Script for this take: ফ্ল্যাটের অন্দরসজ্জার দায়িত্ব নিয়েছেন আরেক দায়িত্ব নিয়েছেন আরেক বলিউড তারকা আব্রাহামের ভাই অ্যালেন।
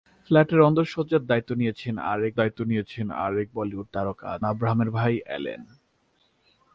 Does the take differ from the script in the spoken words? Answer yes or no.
no